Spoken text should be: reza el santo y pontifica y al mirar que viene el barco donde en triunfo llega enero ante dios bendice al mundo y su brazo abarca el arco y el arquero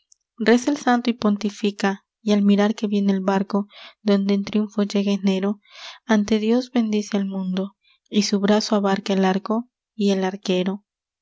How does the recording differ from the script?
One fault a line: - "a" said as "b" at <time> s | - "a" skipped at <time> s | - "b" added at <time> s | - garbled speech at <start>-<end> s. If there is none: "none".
none